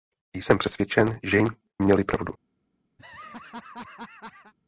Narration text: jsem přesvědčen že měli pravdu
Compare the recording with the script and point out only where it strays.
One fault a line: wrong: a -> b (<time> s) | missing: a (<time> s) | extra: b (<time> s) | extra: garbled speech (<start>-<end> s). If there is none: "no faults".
no faults